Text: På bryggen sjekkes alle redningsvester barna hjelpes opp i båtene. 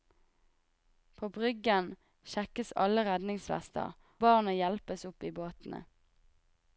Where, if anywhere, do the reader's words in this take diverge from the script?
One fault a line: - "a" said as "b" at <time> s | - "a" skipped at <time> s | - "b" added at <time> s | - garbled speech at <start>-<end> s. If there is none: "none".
none